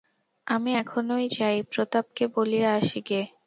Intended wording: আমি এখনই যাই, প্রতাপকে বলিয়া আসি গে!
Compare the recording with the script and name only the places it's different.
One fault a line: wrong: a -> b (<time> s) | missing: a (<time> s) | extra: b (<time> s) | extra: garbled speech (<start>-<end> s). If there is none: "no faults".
no faults